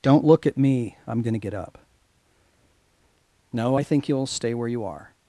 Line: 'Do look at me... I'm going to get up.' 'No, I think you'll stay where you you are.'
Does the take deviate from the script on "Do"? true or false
true